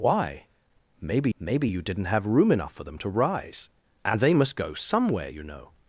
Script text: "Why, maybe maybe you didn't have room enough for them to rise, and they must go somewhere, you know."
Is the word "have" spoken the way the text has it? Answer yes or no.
yes